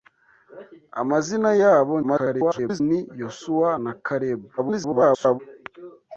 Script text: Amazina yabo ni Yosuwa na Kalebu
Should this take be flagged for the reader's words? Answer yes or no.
yes